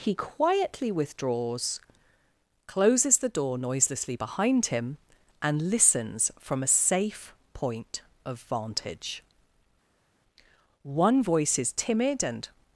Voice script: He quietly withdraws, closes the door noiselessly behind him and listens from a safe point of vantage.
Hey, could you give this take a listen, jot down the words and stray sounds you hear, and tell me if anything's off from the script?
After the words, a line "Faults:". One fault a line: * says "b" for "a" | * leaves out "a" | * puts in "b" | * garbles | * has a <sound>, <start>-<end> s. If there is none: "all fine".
He quietly withdraws, closes the door noiselessly behind him and listens from a safe point of vantage. One voice is timid and
Faults:
* puts in "One voice is timid and"